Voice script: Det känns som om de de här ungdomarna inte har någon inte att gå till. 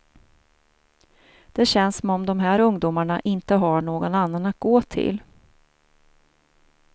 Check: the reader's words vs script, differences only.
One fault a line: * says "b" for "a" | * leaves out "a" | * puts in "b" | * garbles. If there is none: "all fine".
* leaves out "de"
* says "annan" for "inte"